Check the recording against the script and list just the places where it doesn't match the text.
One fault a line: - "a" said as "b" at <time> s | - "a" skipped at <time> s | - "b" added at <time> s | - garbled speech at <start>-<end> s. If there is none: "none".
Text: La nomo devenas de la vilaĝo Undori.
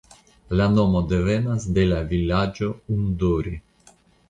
none